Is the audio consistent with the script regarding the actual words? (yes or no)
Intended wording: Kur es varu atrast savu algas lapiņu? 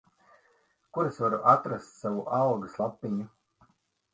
yes